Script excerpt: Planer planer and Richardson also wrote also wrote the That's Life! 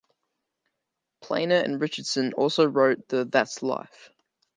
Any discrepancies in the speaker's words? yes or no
yes